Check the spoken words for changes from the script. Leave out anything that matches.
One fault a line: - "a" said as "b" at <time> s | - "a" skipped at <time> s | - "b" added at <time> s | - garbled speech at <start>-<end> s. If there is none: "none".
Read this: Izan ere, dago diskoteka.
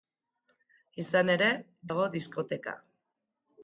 none